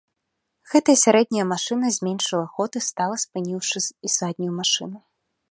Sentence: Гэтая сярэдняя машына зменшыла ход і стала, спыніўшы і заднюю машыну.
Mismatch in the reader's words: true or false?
false